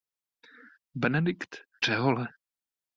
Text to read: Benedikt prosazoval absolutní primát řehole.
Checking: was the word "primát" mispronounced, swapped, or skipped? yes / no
yes